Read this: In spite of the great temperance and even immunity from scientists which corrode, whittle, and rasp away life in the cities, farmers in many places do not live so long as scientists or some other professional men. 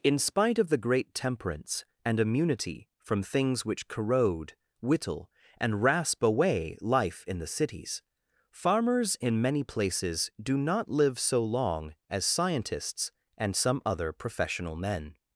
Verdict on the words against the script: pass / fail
fail